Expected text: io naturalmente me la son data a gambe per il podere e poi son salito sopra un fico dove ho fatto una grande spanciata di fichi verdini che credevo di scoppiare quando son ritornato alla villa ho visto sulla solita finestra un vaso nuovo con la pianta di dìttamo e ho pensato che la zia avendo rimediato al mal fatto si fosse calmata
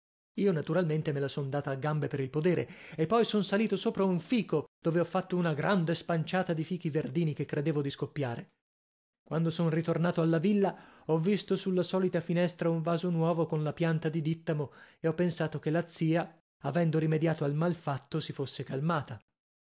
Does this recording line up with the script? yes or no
yes